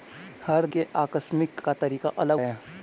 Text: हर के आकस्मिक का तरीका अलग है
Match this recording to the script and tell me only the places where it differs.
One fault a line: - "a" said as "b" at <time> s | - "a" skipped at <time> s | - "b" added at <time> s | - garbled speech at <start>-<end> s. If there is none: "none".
none